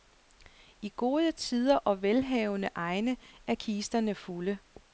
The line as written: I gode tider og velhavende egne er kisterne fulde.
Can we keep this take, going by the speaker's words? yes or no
yes